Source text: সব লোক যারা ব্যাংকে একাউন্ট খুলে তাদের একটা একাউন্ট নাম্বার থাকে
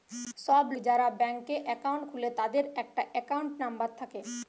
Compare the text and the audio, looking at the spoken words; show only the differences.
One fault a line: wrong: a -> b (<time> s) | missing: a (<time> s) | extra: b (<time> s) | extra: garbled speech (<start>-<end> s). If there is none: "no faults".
missing: লোক (0.7 s)